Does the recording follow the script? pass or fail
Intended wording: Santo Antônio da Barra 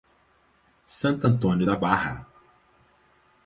pass